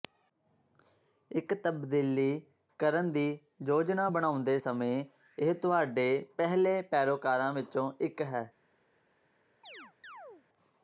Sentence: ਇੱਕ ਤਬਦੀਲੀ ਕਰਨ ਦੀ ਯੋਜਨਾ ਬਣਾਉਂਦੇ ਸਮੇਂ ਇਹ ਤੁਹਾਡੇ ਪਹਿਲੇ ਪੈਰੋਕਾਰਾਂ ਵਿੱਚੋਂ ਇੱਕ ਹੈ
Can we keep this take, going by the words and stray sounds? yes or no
no